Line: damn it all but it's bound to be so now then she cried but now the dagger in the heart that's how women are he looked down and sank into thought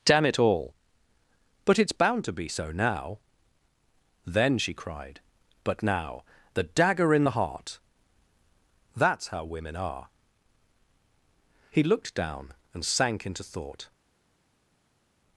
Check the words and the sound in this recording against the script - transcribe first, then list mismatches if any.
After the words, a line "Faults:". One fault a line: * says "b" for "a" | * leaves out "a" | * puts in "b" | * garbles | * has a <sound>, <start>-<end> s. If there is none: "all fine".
damn it all but it's bound to be so now then she cried but now the dagger in the heart that's how women are he looked down and sank into thought
Faults:
all fine